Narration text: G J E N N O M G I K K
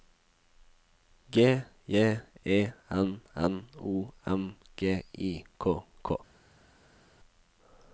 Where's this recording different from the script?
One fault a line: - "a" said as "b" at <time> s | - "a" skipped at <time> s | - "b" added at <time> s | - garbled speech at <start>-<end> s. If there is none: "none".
none